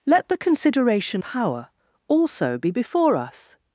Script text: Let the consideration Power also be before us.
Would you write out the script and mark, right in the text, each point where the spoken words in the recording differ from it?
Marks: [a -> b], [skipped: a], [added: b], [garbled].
Let the consideration Power also be before us.